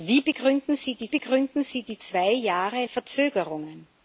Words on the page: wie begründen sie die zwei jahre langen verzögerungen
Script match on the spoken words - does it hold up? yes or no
no